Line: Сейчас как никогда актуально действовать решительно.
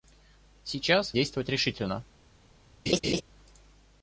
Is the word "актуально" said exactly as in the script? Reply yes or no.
no